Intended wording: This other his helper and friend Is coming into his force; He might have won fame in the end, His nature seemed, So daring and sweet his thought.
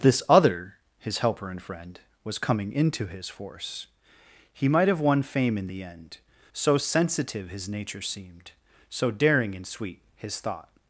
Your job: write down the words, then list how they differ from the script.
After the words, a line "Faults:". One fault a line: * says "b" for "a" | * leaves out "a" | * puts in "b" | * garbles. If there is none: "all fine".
This other his helper and friend Was coming into his force; He might have won fame in the end, So sensitive his nature seemed, So daring and sweet his thought.
Faults:
* says "Was" for "Is"
* puts in "So sensitive"